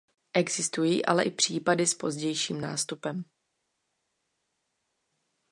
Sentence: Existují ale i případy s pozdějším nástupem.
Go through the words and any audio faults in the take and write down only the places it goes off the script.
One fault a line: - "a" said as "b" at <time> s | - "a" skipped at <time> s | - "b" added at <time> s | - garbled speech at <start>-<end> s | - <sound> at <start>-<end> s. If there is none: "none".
none